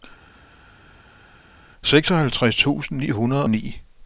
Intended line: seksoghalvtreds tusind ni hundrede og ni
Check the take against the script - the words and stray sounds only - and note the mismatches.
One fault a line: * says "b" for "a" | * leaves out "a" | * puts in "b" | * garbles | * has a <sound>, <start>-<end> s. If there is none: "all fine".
* leaves out "og"